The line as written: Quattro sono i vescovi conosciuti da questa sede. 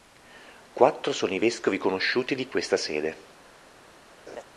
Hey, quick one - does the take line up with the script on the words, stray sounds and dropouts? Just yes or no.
no